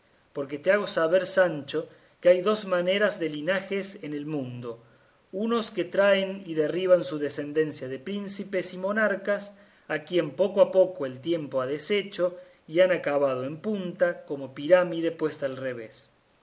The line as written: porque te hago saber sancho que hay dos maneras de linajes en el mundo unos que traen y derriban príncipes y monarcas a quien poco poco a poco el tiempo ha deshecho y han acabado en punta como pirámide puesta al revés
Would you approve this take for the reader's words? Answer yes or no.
no